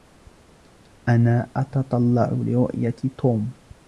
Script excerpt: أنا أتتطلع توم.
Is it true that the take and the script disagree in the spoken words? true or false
true